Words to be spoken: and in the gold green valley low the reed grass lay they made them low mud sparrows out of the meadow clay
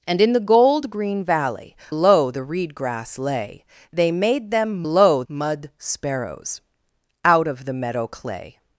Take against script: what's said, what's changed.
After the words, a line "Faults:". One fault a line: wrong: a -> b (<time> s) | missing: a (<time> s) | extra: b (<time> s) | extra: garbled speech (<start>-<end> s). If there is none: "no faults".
and in the gold green valley low the reed grass lay they made them low mud sparrows out of the meadow clay
Faults:
no faults